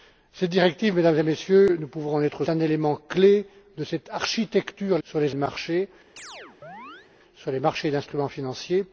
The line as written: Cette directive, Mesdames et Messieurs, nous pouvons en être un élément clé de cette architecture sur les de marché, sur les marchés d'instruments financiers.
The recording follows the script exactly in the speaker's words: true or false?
true